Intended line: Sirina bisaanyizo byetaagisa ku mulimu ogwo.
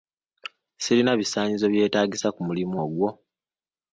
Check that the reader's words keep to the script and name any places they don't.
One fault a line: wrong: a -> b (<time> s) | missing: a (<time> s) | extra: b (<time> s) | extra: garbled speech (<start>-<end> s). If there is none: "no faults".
no faults